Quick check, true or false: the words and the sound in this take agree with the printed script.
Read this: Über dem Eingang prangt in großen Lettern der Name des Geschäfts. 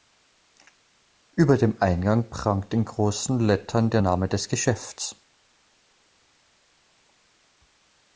true